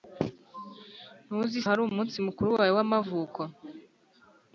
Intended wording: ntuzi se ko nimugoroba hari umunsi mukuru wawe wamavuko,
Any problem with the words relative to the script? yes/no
yes